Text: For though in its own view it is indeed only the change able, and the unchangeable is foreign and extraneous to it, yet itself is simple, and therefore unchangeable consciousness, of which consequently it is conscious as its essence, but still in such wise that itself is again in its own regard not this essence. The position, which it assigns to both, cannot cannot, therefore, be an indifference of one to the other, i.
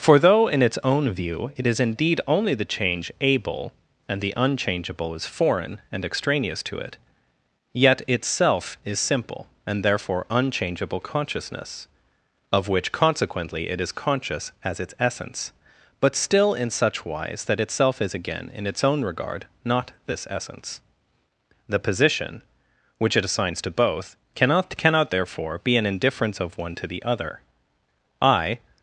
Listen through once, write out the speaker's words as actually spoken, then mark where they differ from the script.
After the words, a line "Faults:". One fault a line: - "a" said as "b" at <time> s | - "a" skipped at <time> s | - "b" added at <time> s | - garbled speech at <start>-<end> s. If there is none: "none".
For though in its own view it is indeed only the change able, and the unchangeable is foreign and extraneous to it, yet itself is simple, and therefore unchangeable consciousness, of which consequently it is conscious as its essence, but still in such wise that itself is again in its own regard not this essence. The position, which it assigns to both, cannot cannot, therefore, be an indifference of one to the other, i.
Faults:
none